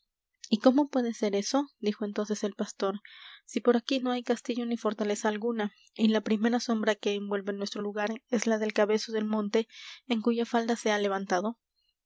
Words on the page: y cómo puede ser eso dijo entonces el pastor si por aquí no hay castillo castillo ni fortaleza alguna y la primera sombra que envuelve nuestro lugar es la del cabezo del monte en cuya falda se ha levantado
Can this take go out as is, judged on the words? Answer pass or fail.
fail